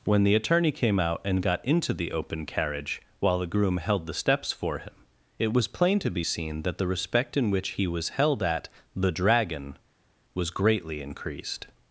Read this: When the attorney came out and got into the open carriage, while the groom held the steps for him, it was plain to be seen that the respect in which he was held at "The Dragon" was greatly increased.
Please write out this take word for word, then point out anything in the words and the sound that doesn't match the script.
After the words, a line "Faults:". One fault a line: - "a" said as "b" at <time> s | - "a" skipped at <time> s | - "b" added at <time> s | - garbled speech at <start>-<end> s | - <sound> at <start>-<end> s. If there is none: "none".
When the attorney came out and got into the open carriage, while the groom held the steps for him, it was plain to be seen that the respect in which he was held at "The Dragon" was greatly increased.
Faults:
none